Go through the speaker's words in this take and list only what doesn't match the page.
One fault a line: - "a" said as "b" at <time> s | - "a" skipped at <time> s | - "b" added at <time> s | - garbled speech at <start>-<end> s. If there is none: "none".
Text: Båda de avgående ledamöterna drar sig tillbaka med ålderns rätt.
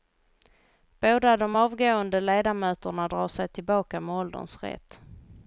none